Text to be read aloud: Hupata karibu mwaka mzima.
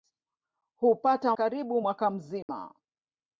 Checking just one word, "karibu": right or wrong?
right